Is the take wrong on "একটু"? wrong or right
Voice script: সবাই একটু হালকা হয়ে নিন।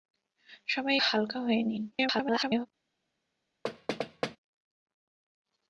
wrong